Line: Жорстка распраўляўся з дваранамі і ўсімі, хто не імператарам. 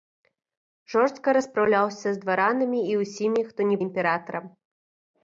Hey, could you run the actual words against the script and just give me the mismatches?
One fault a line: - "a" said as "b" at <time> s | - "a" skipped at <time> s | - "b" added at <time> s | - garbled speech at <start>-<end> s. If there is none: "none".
none